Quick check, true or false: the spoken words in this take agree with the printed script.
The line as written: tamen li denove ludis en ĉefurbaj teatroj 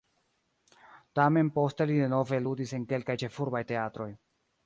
false